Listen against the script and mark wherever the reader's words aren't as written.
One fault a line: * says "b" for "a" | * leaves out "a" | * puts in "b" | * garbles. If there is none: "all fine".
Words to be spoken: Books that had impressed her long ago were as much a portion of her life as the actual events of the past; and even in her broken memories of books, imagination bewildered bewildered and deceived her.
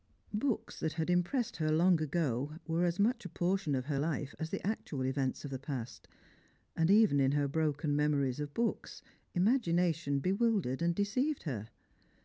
* leaves out "bewildered"